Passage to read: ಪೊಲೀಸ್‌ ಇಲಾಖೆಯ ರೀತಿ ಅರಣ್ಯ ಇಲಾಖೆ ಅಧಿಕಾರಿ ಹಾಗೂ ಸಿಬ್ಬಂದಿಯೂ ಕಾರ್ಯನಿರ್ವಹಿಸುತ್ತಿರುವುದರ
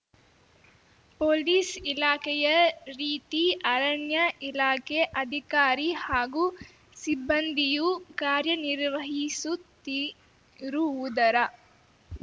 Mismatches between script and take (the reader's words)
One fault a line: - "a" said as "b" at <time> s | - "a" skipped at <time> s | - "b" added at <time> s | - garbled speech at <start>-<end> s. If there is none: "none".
none